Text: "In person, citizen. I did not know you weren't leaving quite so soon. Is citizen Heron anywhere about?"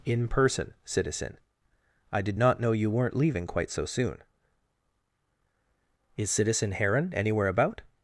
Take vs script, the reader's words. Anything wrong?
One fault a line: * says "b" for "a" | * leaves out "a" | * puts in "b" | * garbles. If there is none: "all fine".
all fine